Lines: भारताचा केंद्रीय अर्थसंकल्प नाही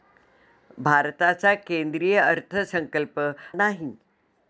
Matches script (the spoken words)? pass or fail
pass